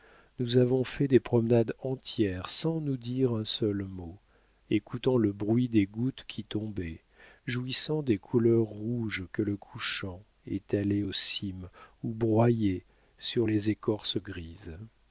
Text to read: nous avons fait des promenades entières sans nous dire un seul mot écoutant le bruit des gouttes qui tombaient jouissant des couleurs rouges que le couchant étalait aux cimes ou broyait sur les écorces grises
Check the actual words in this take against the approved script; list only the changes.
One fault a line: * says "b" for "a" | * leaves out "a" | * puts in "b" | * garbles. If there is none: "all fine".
all fine